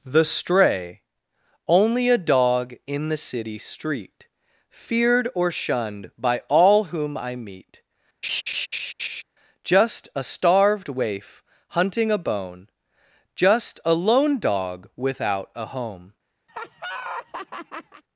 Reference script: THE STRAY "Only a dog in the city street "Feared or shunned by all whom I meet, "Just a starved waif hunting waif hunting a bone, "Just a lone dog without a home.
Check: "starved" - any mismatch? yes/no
no